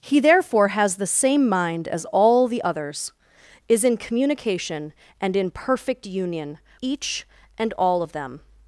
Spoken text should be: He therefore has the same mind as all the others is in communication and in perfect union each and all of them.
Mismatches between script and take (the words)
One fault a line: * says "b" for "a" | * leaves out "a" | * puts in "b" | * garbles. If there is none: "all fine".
all fine